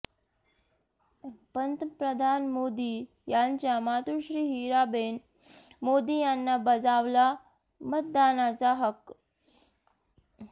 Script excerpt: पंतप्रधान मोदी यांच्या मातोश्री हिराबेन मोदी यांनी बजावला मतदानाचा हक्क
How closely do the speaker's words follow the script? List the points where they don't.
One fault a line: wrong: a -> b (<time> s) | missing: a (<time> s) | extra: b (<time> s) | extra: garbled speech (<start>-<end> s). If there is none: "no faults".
no faults